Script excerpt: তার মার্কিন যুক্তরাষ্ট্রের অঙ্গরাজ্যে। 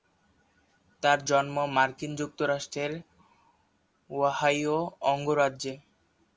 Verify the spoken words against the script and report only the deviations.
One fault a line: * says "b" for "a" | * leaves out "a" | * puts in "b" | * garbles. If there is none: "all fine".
* puts in "জন্ম"
* puts in "ওহাইও"